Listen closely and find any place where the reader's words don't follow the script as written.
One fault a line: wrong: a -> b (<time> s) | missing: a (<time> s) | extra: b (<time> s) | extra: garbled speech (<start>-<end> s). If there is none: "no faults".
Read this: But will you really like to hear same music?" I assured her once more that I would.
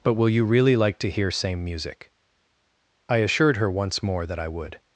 no faults